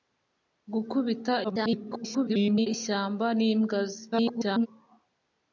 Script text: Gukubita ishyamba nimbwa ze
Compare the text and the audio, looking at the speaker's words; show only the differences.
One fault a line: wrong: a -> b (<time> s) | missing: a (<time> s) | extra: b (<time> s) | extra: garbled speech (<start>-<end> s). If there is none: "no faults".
extra: garbled speech (1.4-2.7 s)
extra: garbled speech (4.1-4.7 s)